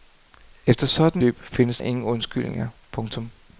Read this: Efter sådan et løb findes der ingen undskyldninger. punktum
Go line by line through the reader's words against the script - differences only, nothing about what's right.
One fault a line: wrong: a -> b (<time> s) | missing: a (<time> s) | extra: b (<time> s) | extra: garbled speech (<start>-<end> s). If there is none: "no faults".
missing: et (1.2 s)
missing: der (1.8 s)